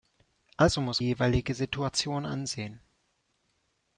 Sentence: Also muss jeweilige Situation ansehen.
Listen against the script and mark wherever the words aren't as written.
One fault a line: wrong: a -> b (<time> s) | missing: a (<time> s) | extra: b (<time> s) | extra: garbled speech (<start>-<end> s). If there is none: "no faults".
no faults